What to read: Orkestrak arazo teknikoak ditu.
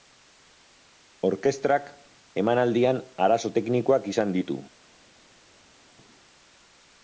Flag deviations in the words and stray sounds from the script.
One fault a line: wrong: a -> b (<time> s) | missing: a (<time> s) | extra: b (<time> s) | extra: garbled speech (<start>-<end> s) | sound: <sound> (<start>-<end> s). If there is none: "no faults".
extra: emanaldian (2.4 s)
extra: izan (4.1 s)